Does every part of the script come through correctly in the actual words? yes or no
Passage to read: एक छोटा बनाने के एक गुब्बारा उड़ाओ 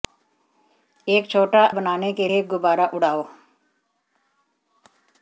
yes